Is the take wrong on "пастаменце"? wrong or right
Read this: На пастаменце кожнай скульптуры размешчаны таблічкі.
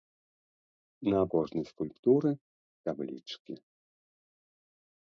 wrong